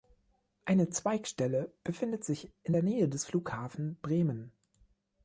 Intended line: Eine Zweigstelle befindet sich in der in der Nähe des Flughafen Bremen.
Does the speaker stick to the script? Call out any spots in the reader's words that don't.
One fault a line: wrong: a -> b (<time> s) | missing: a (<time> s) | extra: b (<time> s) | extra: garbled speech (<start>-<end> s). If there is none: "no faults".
missing: in der (2.8 s)